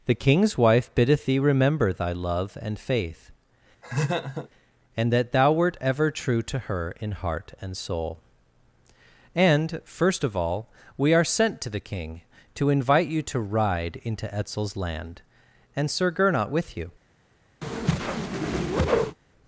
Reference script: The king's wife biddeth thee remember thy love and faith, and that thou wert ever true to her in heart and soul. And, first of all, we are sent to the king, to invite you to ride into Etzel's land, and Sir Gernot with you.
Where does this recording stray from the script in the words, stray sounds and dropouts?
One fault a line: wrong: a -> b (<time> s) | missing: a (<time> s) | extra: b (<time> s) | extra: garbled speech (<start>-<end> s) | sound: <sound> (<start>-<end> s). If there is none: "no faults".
sound: laugh (3.8-4.5 s)
sound: whoosh (17.6-19.2 s)